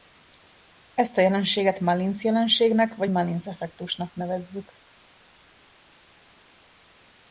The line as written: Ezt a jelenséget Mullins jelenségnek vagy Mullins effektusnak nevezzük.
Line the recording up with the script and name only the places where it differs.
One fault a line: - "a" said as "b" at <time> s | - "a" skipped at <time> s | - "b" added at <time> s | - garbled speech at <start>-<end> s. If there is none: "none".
none